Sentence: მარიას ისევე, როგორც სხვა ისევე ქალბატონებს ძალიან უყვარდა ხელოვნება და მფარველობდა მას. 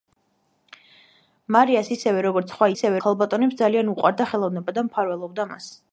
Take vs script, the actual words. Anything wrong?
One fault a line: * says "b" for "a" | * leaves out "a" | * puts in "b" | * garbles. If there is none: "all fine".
all fine